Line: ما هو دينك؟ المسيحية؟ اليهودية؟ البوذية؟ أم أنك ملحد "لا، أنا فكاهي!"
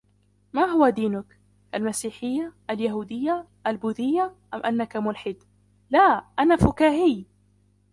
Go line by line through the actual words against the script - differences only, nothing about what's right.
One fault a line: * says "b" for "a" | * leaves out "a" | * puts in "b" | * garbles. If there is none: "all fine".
all fine